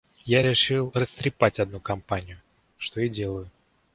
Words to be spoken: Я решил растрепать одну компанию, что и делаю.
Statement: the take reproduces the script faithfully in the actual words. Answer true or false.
true